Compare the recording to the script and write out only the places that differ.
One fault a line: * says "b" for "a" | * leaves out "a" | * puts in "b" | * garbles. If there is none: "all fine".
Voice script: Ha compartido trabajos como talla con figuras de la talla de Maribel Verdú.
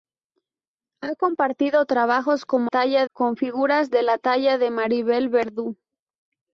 all fine